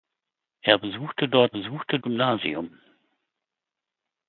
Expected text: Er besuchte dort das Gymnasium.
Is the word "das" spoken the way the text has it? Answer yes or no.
no